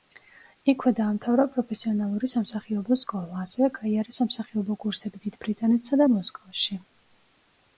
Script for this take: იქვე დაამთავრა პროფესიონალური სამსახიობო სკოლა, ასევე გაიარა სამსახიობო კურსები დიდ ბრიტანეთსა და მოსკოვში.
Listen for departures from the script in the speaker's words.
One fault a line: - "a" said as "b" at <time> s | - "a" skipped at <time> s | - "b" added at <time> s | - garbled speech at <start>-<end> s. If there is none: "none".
none